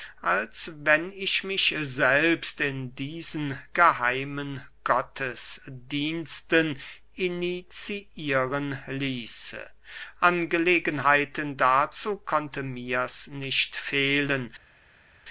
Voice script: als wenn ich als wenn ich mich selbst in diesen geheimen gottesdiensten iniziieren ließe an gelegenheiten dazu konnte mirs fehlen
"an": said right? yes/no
yes